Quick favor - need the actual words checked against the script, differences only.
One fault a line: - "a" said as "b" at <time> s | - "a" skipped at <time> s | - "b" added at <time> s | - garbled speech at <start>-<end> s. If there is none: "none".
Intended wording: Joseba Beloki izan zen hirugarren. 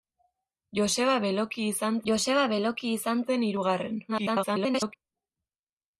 - "joseba Beloki izan" added at 2.1 s
- garbled speech at 4.1-4.9 s